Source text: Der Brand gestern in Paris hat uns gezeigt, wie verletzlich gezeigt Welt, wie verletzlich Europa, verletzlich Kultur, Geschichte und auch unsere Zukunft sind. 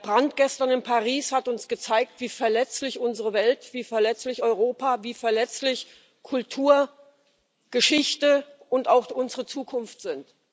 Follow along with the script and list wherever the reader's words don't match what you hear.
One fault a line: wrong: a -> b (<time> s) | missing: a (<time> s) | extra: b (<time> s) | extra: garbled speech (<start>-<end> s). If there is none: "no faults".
wrong: gezeigt -> unsere (3.0 s)
extra: wie (5.0 s)